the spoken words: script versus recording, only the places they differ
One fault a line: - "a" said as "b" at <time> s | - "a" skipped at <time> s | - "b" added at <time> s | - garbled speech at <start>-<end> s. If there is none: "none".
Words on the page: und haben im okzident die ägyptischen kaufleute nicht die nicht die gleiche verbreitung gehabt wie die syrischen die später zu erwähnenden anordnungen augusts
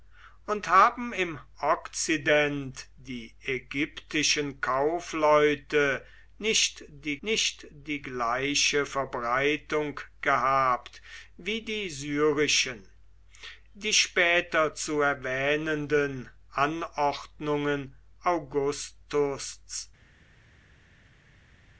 none